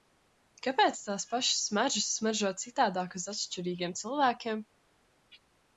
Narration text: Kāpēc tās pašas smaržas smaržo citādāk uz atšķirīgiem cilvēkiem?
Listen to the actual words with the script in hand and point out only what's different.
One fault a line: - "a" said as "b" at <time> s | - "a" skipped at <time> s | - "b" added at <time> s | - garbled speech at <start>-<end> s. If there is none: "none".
none